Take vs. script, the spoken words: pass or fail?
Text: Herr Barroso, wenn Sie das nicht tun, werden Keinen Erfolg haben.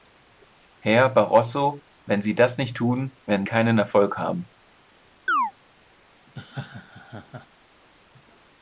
pass